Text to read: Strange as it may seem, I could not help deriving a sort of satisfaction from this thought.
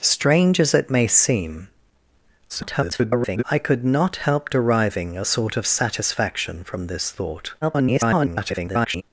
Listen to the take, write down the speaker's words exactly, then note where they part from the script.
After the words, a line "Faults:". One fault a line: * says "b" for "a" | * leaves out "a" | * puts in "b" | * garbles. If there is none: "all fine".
Strange as it may seem, [garbled] I could not help deriving a sort of satisfaction from this thought. [garbled]
Faults:
* garbles
* garbles